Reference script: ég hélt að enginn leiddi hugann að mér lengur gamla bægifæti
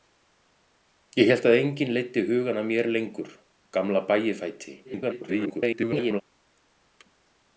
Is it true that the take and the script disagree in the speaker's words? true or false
true